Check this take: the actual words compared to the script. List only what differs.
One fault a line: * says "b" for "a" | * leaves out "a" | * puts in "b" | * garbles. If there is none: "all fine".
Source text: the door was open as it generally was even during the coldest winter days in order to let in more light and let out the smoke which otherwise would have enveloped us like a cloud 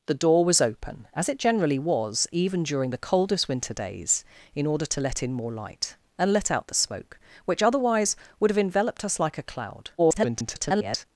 * garbles